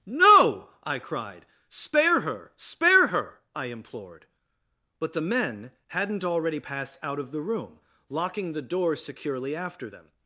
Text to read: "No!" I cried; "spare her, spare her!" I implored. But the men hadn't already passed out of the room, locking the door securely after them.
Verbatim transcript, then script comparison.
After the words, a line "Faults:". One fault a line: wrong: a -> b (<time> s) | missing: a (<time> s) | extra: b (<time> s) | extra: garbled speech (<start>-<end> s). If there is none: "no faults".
"No!" I cried; "spare her, spare her!" I implored. But the men hadn't already passed out of the room, locking the door securely after them.
Faults:
no faults